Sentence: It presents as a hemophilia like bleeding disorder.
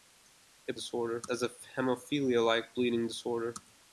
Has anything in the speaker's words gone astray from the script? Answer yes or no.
yes